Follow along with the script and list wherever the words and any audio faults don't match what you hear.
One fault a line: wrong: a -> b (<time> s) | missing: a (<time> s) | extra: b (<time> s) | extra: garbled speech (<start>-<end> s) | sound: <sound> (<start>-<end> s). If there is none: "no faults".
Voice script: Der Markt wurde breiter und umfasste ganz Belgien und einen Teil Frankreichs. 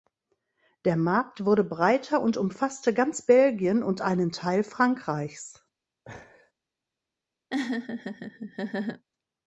sound: laugh (6.1-6.5 s)
sound: laugh (7.5-9.0 s)